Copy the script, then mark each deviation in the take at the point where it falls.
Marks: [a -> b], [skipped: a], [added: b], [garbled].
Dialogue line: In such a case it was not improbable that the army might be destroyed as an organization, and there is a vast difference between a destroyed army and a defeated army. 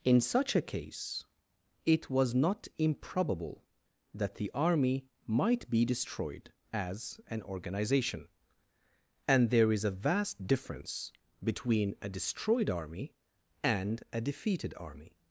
In such a case it was not improbable that the army might be destroyed as an organization, and there is a vast difference between a destroyed army and a defeated army.